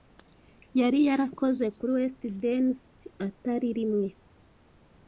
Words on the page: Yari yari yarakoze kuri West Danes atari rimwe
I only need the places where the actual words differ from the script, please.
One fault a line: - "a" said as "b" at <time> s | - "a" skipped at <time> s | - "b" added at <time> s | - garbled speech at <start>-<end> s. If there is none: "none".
- "yari" skipped at 1.0 s